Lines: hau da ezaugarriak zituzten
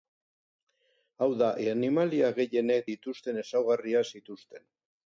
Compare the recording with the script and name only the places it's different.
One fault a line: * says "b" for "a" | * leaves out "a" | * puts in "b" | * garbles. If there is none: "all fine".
* puts in "animalia gehienek dituzten"